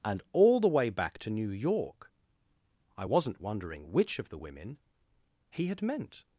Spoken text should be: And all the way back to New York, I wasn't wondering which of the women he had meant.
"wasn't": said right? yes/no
yes